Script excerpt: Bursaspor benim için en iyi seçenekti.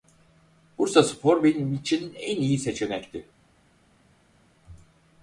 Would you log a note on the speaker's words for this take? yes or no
no